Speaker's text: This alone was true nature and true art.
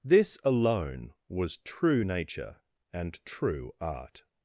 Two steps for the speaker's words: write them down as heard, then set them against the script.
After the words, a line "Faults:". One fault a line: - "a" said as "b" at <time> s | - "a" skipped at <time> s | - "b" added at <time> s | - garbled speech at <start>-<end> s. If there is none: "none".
This alone was true nature and true art.
Faults:
none